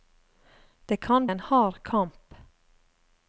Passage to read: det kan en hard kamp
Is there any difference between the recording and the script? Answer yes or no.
no